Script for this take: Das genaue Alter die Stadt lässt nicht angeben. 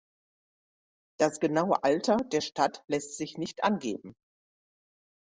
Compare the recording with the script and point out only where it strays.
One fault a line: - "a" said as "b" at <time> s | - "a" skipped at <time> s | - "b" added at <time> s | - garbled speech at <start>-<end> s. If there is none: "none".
- "die" said as "der" at 2.2 s
- "sich" added at 3.2 s